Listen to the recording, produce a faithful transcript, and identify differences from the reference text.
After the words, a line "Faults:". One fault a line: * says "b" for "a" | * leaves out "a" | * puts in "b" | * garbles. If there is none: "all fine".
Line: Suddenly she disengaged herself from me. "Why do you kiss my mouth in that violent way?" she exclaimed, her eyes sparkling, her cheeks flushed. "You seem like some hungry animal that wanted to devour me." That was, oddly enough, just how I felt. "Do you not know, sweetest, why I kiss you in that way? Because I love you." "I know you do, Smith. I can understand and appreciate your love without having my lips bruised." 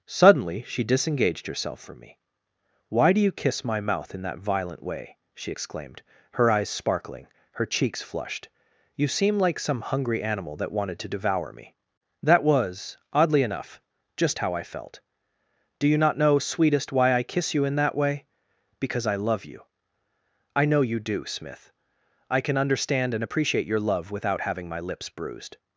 Suddenly she disengaged herself from me. "Why do you kiss my mouth in that violent way?" she exclaimed, her eyes sparkling, her cheeks flushed. "You seem like some hungry animal that wanted to devour me." That was, oddly enough, just how I felt. "Do you not know, sweetest, why I kiss you in that way? Because I love you." "I know you do, Smith. I can understand and appreciate your love without having my lips bruised."
Faults:
all fine